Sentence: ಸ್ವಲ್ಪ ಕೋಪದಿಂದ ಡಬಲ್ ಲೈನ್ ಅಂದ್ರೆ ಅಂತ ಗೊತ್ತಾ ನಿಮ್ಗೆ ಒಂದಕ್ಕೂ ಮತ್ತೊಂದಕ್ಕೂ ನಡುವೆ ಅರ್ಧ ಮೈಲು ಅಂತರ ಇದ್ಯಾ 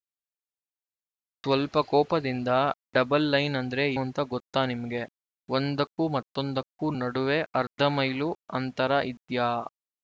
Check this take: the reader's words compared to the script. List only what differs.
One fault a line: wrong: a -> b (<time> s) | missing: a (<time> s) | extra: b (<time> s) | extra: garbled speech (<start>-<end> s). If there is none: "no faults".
no faults